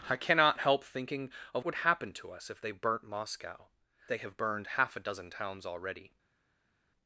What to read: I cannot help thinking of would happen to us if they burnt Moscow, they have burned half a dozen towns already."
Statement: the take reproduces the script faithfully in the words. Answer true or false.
true